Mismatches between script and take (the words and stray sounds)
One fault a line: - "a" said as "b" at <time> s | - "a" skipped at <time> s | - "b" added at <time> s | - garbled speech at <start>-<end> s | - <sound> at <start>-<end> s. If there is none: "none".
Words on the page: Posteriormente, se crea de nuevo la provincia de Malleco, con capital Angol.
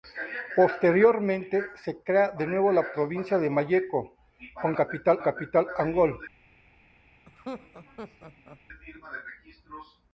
- "capital" added at 5.2 s
- laugh at 7.3-8.6 s